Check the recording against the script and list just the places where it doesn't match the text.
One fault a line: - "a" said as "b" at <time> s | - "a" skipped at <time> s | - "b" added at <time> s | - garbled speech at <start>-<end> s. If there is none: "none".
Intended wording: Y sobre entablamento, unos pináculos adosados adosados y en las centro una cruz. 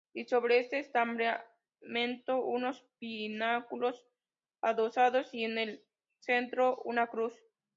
- "este" added at 0.6 s
- "adosados" skipped at 5.3 s
- "las" said as "el" at 5.6 s